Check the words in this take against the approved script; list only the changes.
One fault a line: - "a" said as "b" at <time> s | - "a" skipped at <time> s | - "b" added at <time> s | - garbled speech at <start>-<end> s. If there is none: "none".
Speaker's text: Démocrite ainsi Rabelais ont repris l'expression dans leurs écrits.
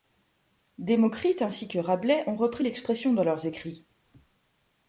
- "que" added at 1.7 s